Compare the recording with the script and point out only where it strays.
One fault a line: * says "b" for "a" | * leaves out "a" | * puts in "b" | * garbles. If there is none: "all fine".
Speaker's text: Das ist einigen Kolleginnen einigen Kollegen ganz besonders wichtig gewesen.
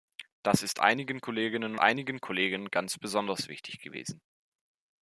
all fine